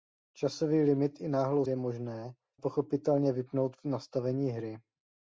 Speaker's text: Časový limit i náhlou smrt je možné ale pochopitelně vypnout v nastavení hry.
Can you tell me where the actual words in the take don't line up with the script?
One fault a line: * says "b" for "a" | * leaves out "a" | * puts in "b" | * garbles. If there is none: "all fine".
* leaves out "smrt"
* leaves out "ale"